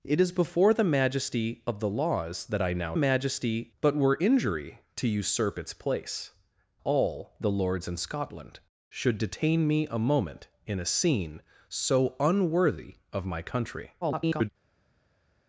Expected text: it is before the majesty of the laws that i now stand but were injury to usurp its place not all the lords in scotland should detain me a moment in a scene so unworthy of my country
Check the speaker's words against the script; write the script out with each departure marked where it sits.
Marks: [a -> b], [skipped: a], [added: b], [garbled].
it is before the majesty of the laws that i now [stand -> majesty] but were injury to usurp its place [skipped: not] all the lords in scotland should detain me a moment in a scene so unworthy of my country [garbled]